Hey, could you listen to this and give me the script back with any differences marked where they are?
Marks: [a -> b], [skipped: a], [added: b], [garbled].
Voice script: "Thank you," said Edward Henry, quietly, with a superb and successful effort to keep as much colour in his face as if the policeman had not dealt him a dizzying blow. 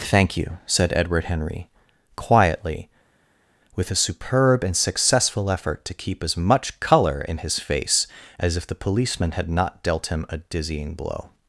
"Thank you," said Edward Henry, quietly, with a superb and successful effort to keep as much colour in his face as if the policeman had not dealt him a dizzying blow.